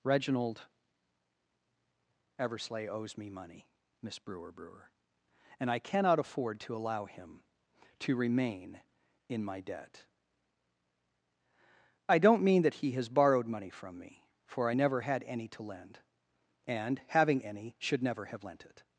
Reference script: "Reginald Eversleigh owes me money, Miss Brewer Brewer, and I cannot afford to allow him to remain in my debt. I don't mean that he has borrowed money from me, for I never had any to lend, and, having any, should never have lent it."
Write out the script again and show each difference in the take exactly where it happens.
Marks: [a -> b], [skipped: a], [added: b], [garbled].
"Reginald Eversleigh owes me money, Miss Brewer Brewer, and I cannot afford to allow him to remain in my debt. I don't mean that he has borrowed money from me, for I never had any to lend, and, having any, should never have lent it."